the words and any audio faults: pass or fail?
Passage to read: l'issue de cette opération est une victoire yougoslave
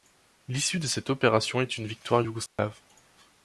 fail